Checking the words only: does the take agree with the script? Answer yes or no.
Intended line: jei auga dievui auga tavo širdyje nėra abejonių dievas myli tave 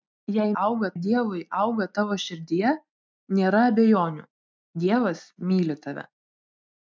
yes